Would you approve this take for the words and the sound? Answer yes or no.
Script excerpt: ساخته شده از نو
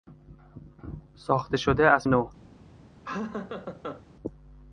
no